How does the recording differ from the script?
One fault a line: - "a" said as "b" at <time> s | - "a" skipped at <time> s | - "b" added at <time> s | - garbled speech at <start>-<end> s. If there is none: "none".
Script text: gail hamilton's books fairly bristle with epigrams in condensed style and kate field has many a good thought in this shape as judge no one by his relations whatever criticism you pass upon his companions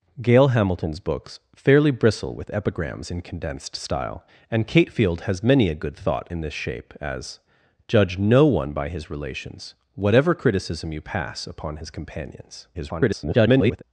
- garbled speech at 12.7-13.8 s